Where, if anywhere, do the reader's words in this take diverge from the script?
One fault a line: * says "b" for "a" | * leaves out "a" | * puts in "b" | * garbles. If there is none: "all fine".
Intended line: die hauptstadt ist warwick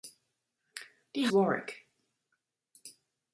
* leaves out "hauptstadt ist"